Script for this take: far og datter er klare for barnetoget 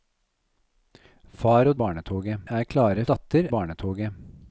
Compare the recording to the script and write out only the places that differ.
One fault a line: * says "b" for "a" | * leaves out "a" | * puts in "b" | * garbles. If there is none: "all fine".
* says "barnetoget" for "datter"
* says "datter" for "for"